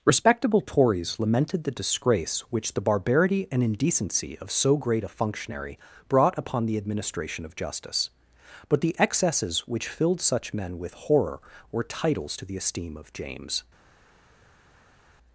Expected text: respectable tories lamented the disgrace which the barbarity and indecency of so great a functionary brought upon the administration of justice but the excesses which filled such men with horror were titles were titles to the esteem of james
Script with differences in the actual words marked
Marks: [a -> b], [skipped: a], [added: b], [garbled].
respectable tories lamented the disgrace which the barbarity and indecency of so great a functionary brought upon the administration of justice but the excesses which filled such men with horror were titles [skipped: were titles] to the esteem of james